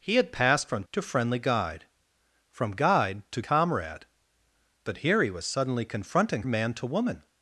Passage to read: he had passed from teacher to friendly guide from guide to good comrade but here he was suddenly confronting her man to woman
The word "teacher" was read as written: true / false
false